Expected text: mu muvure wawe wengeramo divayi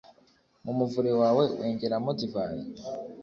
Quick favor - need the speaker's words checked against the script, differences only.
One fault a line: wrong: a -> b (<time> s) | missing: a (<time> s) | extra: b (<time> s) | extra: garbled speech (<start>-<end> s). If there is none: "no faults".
no faults